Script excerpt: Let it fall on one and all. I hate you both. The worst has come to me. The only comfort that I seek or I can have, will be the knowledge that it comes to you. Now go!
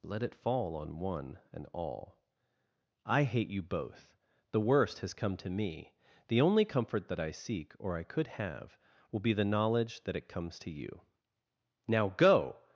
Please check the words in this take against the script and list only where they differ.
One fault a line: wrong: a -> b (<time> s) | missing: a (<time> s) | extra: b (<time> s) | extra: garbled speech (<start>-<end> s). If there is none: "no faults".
wrong: can -> could (8.0 s)